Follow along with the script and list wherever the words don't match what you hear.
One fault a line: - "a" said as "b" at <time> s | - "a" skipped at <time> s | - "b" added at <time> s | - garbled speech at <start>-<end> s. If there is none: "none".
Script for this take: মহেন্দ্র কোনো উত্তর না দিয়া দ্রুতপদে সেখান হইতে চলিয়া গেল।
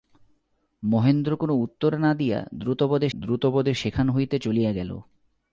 - "দ্রুতপদে" added at 3.2 s